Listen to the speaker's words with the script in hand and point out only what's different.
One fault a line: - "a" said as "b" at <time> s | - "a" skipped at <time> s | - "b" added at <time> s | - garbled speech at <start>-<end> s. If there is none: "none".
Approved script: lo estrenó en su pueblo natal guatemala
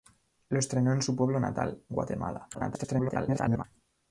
- garbled speech at 2.5-3.6 s